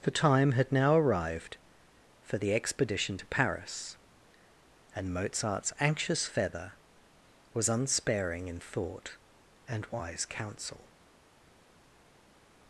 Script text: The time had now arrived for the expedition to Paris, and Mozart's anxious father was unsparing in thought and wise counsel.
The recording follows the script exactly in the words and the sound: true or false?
false